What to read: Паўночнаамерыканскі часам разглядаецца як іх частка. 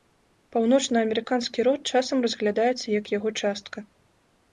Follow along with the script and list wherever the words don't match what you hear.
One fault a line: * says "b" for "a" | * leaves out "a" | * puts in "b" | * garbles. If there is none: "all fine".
* puts in "род"
* says "яго" for "іх"